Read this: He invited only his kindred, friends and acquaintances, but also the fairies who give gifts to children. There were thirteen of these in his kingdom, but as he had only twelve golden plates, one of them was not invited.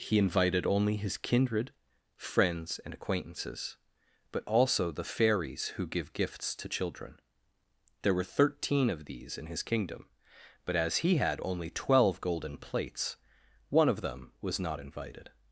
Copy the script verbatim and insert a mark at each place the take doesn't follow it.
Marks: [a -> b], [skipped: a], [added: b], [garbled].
He invited only his kindred, friends and acquaintances, but also the fairies who give gifts to children. There were thirteen of these in his kingdom, but as he had only twelve golden plates, one of them was not invited.